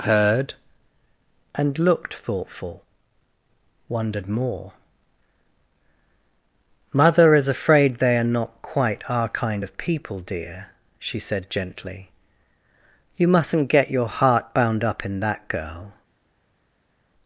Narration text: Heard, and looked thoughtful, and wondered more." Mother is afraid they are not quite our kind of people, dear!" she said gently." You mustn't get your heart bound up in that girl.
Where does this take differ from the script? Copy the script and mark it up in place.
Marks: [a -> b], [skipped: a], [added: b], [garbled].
Heard, and looked thoughtful, [skipped: and] wondered more." Mother is afraid they are not quite our kind of people, dear!" she said gently." You mustn't get your heart bound up in that girl.